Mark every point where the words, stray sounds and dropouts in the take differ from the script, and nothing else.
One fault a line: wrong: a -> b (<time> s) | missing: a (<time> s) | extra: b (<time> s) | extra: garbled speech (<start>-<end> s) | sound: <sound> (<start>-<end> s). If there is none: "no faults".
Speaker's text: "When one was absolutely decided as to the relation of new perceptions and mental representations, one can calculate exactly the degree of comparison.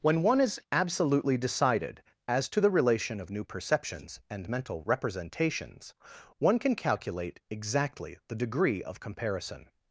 wrong: was -> is (0.4 s)